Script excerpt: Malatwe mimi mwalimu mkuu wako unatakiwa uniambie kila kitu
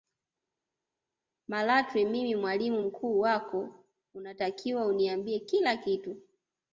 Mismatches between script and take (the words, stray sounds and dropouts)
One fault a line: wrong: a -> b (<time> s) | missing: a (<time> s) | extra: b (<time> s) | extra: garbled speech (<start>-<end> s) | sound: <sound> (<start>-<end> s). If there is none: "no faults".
no faults